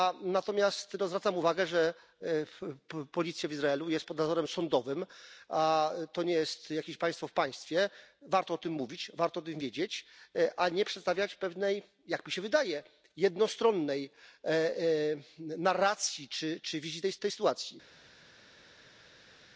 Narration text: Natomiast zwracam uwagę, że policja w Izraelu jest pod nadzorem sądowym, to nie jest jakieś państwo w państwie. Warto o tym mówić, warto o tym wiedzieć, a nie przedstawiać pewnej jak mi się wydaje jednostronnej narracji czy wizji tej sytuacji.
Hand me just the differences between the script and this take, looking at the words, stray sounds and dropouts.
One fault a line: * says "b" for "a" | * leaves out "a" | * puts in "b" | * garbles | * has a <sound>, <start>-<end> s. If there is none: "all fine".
all fine